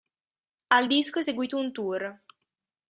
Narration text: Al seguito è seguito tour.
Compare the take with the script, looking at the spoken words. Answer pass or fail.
fail